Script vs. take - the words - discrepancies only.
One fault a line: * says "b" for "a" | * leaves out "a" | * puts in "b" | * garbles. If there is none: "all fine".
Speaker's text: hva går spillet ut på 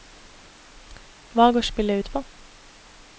all fine